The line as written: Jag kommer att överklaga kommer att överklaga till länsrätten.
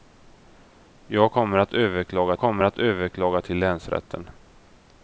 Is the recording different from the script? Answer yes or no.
no